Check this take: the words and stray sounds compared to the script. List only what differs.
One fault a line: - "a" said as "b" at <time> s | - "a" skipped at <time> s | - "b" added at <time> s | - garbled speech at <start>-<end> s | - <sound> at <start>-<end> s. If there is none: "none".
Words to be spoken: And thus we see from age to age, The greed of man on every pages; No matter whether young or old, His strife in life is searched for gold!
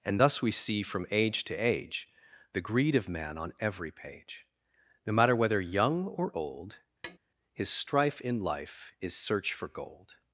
- "pages" said as "page" at 3.9 s
- tap at 7.0-7.2 s
- "searched" said as "search" at 9.1 s